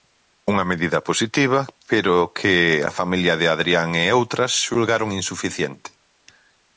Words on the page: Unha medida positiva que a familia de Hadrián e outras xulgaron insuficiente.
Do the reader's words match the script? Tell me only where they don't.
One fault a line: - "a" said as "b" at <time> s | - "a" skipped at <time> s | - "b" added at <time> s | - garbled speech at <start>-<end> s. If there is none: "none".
- "pero" added at 1.9 s